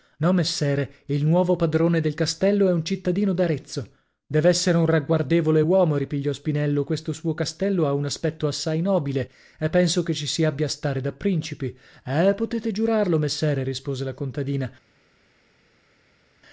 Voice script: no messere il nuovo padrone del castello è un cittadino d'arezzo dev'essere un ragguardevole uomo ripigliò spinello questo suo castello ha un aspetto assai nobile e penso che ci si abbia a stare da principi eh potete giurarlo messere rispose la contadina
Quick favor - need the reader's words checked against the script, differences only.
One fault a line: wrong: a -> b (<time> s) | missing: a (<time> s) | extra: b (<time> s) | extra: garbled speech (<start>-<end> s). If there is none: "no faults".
no faults